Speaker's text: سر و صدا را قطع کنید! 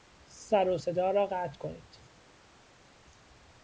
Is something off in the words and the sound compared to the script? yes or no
no